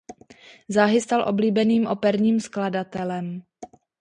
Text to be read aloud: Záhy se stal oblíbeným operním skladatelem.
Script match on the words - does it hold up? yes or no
no